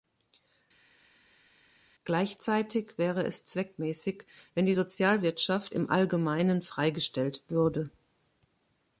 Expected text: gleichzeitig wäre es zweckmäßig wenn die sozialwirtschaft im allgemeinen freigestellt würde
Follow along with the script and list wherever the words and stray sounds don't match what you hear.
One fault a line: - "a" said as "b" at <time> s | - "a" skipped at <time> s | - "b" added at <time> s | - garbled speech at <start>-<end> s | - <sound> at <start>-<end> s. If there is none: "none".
none